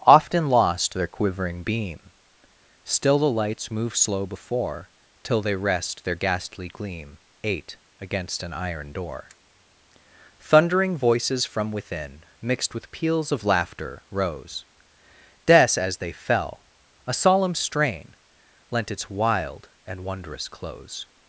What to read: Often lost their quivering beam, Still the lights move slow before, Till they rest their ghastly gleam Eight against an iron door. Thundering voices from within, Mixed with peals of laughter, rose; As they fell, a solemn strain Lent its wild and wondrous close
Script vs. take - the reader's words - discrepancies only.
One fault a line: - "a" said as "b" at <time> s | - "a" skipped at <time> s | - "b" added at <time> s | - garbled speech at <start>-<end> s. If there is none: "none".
- "des" added at 15.4 s